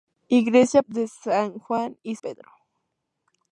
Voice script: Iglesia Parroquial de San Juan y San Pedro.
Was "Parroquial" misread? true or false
true